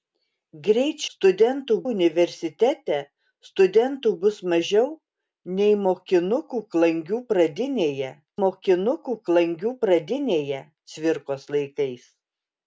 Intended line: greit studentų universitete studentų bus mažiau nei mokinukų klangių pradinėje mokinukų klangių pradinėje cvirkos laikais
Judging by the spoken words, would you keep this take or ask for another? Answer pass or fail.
pass